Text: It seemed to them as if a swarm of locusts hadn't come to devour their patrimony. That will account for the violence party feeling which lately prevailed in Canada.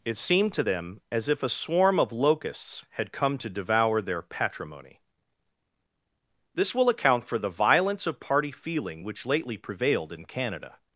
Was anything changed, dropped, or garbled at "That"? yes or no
yes